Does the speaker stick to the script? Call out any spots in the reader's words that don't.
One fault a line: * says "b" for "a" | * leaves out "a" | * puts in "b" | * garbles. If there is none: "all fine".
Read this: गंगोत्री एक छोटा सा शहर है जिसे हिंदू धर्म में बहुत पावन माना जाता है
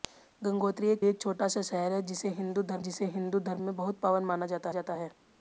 * puts in "एक"
* puts in "जिसे हिंदू धर्म"
* puts in "जाता"